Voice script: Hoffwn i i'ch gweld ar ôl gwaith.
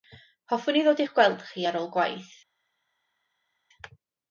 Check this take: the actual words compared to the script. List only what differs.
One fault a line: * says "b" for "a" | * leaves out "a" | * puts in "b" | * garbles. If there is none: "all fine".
* puts in "ddod"
* puts in "chi"